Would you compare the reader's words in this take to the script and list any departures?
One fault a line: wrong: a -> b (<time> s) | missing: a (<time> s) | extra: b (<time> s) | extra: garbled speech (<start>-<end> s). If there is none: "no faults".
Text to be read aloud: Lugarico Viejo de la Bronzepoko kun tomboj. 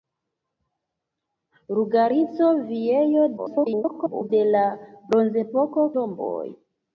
extra: garbled speech (3.4-4.3 s)
missing: kun (5.9 s)